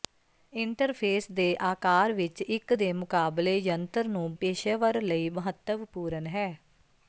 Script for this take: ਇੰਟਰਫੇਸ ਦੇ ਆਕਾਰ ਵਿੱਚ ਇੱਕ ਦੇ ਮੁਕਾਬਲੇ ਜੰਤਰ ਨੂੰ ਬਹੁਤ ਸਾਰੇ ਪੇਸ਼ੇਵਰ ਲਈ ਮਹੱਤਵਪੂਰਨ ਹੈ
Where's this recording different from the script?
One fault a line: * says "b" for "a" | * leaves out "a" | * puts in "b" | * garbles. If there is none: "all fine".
* leaves out "ਬਹੁਤ ਸਾਰੇ"